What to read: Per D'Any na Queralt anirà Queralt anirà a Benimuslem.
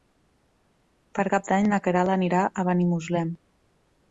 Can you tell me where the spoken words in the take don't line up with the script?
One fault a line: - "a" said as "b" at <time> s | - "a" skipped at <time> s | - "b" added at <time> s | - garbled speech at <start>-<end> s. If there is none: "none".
- "Cap" added at 1.3 s
- "Queralt anirà" skipped at 2.5 s